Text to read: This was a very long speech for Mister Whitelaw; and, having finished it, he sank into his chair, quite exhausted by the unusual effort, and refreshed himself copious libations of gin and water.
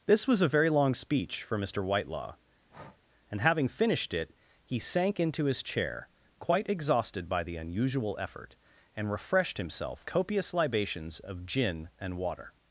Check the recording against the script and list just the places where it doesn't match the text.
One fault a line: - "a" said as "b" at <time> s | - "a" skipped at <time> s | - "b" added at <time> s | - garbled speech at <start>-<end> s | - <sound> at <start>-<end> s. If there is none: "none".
- breath at 2.7-3.0 s